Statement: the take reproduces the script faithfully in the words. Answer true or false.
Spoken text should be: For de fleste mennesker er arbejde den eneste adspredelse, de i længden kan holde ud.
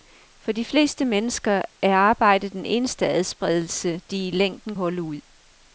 false